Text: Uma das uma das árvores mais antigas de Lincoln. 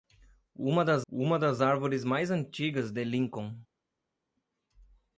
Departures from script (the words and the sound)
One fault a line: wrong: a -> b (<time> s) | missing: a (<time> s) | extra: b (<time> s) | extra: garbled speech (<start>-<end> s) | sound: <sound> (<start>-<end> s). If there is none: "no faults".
no faults